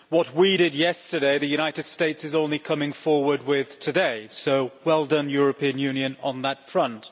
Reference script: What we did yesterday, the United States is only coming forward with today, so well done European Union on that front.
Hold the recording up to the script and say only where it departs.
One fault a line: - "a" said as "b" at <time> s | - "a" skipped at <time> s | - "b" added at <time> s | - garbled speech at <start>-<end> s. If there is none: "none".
none